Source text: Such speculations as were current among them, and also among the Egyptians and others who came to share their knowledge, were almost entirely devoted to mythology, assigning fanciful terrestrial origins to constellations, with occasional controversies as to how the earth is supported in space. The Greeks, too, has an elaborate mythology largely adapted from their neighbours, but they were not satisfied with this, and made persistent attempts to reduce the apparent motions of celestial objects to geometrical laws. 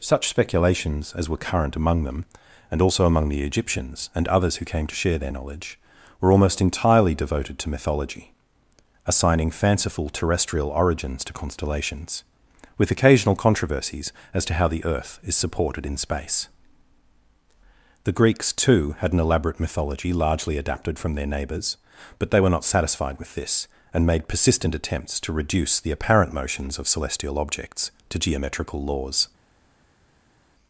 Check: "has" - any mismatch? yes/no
yes